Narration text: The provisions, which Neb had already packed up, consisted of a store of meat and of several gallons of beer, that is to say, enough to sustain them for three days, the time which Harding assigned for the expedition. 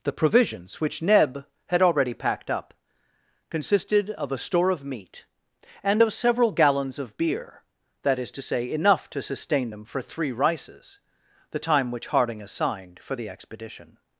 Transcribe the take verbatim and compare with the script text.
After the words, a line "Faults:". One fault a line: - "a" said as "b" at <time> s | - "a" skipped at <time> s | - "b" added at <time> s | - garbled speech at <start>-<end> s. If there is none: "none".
The provisions, which Neb had already packed up, consisted of a store of meat and of several gallons of beer, that is to say, enough to sustain them for three rices, the time which Harding assigned for the expedition.
Faults:
- "days" said as "rices" at 10.3 s